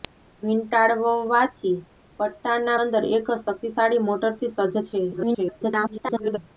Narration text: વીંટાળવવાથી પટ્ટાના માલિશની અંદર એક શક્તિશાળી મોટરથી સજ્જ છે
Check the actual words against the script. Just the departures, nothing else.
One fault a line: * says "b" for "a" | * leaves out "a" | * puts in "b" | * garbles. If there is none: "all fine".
* leaves out "માલિશની"
* garbles